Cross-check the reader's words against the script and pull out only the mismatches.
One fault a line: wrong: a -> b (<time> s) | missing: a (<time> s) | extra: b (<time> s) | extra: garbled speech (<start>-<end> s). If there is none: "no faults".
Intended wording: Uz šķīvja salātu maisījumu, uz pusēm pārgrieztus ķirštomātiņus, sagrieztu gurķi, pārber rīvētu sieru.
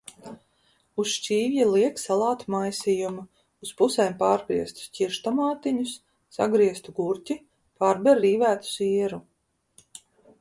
extra: liek (1.7 s)